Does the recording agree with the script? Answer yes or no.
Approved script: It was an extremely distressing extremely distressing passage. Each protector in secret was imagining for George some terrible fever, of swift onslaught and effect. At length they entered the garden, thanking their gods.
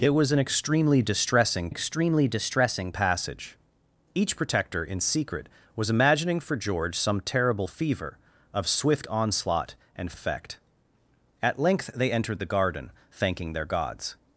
yes